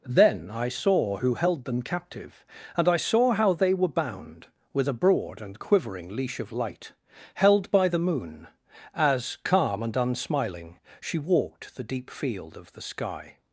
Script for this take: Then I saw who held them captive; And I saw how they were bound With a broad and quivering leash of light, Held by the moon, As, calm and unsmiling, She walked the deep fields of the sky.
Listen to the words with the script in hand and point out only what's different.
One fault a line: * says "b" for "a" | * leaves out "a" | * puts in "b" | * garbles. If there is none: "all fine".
* says "field" for "fields"